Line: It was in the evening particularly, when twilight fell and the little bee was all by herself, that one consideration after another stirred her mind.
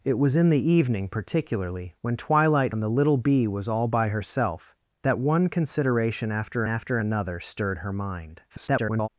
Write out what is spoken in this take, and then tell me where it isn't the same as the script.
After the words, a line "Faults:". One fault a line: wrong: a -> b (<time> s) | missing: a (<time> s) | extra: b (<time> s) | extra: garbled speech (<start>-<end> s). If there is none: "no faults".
It was in the evening particularly, when twilight and the little bee was all by herself, that one consideration after after another stirred her mind. [garbled]
Faults:
missing: fell (2.7 s)
extra: after (6.7 s)
extra: garbled speech (8.5-9.1 s)